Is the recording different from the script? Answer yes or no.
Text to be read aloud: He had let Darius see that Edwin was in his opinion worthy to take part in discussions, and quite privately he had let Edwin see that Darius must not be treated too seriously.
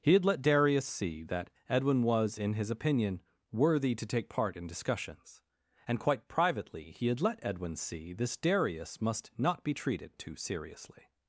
yes